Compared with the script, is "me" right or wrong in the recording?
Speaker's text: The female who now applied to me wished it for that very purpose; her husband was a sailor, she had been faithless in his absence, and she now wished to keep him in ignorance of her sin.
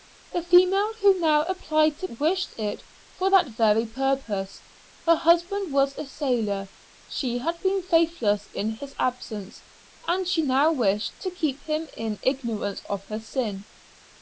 wrong